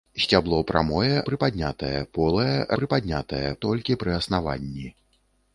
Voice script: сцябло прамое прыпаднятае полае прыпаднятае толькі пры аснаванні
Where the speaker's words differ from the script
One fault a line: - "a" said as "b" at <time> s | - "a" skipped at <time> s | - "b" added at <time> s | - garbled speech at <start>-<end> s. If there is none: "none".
none